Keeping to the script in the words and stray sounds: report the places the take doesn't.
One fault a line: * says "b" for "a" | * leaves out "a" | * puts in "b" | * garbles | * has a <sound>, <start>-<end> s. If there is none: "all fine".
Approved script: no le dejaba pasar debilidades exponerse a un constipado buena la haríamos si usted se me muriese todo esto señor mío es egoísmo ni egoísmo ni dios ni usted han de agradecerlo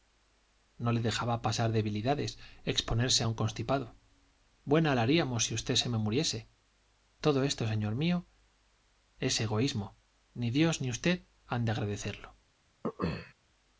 * leaves out "egoísmo ni"
* has a throat clearing, 12.8-13.3 s